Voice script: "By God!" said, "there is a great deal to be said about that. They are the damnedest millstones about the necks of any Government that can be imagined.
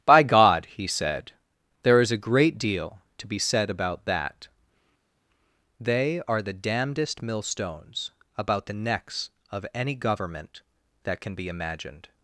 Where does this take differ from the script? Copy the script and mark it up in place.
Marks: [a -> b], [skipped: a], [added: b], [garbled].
"By God!" [added: he] said, "there is a great deal to be said about that. They are the damnedest millstones about the necks of any Government that can be imagined.